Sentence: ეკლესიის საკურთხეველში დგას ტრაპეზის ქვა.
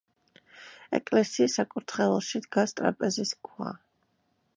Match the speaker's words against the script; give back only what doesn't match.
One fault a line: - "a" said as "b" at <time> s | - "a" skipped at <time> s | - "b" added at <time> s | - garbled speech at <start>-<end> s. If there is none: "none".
none